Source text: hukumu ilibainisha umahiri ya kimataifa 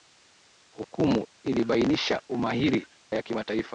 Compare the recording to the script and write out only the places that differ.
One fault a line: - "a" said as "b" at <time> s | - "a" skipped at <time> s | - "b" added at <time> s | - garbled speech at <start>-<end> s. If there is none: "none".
none